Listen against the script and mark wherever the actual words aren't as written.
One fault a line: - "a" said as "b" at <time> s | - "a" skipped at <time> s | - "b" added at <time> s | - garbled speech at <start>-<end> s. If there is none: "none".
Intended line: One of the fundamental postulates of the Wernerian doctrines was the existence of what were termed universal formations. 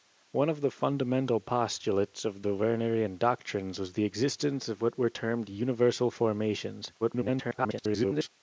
- garbled speech at 7.0-8.3 s